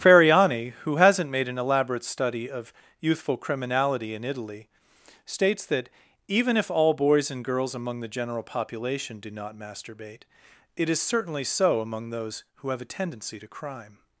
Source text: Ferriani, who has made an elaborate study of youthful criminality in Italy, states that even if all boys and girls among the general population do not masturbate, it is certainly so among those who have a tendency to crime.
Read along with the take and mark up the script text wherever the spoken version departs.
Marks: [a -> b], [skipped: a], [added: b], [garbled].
Ferriani, who [has -> hasn't] made an elaborate study of youthful criminality in Italy, states that even if all boys and girls among the general population do not masturbate, it is certainly so among those who have a tendency to crime.